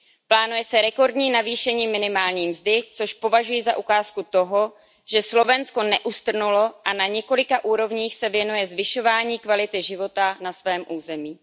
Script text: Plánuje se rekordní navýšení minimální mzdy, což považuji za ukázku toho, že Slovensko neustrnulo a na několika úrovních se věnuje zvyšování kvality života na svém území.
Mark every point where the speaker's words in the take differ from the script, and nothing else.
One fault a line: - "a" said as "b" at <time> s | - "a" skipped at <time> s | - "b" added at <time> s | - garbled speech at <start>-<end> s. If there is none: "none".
none